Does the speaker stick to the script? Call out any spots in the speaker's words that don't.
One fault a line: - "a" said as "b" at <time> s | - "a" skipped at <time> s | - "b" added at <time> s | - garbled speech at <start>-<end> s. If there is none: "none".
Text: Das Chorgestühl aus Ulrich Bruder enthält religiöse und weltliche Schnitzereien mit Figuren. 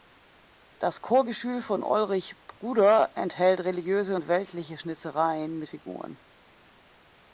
- "aus" said as "von" at 1.6 s